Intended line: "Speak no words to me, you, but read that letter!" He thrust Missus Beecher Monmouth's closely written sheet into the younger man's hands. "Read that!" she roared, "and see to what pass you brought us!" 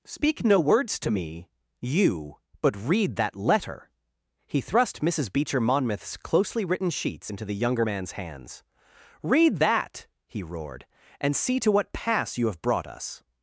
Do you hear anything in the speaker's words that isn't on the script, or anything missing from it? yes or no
yes